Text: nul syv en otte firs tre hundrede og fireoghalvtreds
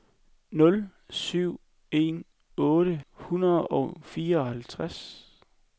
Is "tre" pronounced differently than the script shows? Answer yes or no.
yes